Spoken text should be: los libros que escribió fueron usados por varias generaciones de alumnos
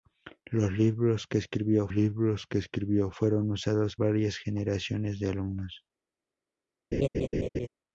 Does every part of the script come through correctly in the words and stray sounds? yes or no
no